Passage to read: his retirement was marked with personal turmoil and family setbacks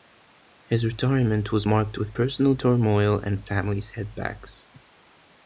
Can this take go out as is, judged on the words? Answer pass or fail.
pass